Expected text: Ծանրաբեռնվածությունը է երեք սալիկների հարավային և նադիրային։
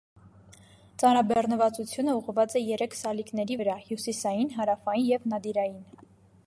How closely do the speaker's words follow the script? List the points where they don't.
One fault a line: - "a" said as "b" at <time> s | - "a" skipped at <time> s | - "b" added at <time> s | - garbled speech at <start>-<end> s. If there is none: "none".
- "ուղղված" added at 2.2 s
- "վրա հյուսիսային" added at 3.6 s